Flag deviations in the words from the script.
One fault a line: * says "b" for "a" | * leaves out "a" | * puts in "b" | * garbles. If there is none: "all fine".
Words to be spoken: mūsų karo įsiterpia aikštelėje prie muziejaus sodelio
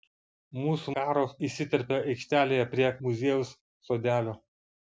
all fine